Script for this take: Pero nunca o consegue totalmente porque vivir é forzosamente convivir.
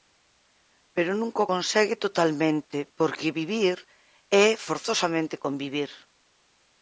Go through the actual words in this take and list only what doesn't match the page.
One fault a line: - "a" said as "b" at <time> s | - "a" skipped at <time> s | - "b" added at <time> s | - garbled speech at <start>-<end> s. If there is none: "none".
none